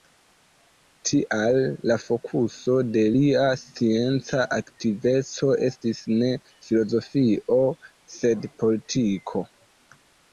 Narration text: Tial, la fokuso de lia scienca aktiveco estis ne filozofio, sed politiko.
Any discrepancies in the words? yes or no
no